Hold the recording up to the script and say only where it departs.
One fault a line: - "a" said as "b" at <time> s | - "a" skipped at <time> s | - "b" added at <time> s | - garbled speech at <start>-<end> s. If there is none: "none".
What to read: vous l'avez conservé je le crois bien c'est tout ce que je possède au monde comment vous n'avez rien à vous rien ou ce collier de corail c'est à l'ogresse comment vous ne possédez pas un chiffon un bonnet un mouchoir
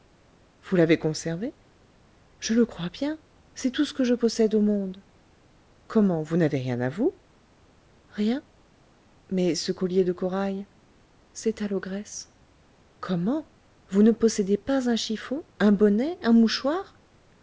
- "ou" said as "mais" at 9.3 s